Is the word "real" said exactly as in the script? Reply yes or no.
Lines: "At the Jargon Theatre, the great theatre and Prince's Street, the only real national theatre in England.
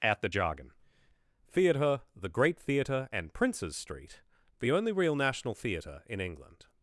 yes